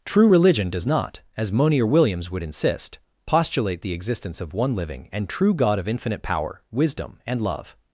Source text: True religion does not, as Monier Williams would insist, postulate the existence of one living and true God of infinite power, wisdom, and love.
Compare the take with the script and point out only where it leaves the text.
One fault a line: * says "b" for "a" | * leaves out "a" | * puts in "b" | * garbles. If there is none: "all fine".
all fine